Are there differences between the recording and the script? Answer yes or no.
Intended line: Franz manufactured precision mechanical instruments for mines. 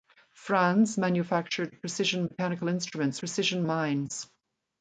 yes